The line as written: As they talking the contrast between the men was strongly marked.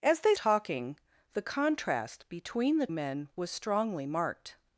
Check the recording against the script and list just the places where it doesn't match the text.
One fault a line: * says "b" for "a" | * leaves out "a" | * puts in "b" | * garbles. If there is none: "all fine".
all fine